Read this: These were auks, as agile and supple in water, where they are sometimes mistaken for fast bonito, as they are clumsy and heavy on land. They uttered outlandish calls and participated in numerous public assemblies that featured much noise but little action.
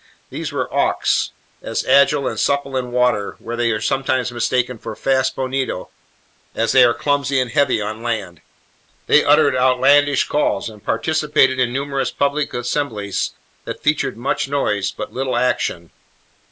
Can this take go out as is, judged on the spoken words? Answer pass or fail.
pass